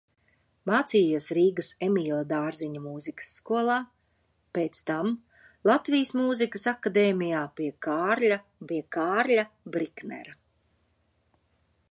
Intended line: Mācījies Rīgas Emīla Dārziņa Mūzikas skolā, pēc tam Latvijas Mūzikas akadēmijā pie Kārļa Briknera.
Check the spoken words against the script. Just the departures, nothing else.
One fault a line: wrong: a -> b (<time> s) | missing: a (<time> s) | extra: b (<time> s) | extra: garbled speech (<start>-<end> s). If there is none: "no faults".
extra: pie Kārļa (8.7 s)